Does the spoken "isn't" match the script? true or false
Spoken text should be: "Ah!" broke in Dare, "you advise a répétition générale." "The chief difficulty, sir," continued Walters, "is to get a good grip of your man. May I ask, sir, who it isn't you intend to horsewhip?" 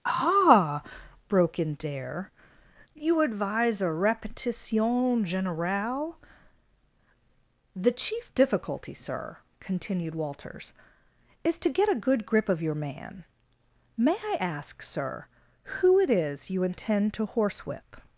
false